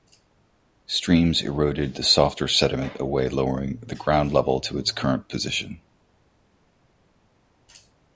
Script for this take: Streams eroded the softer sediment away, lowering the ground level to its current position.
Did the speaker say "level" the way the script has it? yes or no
yes